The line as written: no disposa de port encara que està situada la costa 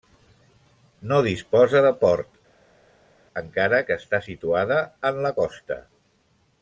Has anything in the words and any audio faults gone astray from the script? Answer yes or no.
yes